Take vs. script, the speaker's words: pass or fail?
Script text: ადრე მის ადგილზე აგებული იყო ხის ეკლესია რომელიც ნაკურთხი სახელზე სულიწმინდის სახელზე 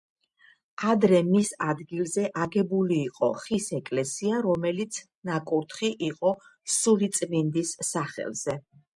fail